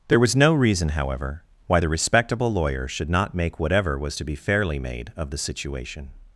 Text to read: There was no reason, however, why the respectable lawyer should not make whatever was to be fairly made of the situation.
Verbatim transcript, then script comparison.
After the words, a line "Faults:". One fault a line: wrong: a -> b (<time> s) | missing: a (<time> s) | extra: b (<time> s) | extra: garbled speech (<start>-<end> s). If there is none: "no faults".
There was no reason, however, why the respectable lawyer should not make whatever was to be fairly made of the situation.
Faults:
no faults